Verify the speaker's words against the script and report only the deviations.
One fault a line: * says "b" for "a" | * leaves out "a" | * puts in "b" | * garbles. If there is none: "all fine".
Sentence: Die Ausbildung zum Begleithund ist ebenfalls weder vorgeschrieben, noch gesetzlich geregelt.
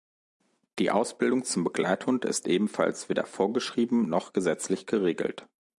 all fine